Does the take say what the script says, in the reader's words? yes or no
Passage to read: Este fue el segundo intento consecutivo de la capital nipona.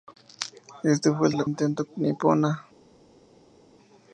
no